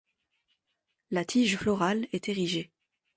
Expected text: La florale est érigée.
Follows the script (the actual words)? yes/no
no